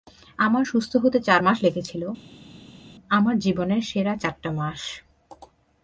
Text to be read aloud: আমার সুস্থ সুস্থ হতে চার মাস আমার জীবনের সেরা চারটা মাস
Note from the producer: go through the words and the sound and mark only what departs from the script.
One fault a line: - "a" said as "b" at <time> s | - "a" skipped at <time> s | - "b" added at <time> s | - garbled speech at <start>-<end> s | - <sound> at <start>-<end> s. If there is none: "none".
- "সুস্থ" skipped at 0.9 s
- "লেগেছিল" added at 1.6 s